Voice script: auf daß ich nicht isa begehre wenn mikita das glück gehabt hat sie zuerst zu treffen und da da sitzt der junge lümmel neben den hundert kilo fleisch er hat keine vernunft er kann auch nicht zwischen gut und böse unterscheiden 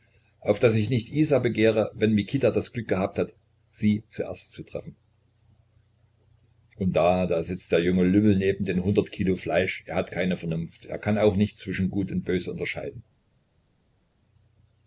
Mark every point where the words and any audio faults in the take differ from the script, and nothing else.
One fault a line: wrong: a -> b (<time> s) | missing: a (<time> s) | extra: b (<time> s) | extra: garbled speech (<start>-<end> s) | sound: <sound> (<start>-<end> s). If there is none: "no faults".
no faults